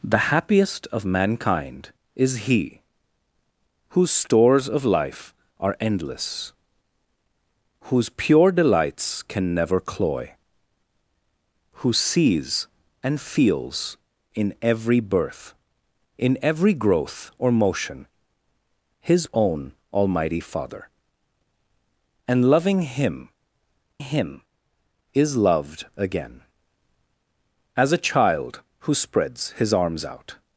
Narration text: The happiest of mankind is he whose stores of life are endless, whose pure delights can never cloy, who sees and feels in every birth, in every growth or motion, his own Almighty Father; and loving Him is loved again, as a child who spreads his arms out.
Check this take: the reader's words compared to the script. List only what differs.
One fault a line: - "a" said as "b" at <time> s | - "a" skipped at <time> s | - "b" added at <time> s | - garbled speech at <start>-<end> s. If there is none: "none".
- "Him" added at 24.0 s